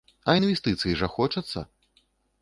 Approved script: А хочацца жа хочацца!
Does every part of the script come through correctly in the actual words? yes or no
no